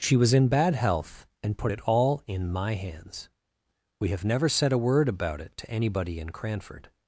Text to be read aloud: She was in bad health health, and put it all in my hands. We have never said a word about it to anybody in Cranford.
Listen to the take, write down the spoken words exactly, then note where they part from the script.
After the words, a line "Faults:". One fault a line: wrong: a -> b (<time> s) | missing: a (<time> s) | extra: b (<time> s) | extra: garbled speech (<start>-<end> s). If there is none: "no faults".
She was in bad health, and put it all in my hands. We have never said a word about it to anybody in Cranford.
Faults:
missing: health (1.3 s)